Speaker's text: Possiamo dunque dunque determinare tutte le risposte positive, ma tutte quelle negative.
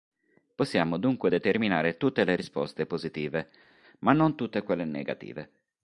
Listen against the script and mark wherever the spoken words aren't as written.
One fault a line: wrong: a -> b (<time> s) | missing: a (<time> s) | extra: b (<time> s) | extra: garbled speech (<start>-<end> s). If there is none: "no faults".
missing: dunque (1.3 s)
extra: non (4.1 s)